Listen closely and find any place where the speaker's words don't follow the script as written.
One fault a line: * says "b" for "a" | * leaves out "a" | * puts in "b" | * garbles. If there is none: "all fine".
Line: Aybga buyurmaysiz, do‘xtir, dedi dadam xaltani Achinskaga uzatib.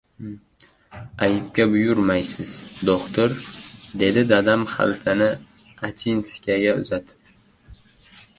all fine